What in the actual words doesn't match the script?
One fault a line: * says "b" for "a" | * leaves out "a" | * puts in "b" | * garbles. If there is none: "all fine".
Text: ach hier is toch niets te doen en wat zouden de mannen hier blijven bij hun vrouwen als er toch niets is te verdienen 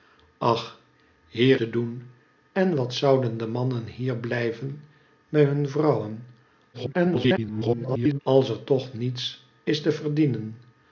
* leaves out "is toch niets"
* garbles